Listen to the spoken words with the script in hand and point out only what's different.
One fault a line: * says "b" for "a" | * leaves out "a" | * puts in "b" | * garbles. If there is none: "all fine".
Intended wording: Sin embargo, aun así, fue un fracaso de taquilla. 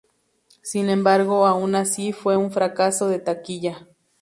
all fine